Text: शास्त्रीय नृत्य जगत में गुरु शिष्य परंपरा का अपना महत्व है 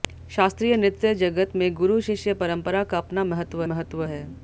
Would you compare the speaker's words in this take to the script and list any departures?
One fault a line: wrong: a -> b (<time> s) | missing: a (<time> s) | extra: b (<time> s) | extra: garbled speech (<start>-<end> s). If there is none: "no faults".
extra: महत्व (3.6 s)